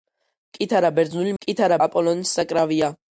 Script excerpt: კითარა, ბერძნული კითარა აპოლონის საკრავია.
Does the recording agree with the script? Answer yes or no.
yes